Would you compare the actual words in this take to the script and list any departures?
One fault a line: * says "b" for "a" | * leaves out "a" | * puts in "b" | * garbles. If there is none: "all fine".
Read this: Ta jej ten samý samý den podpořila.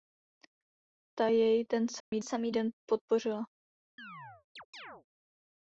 all fine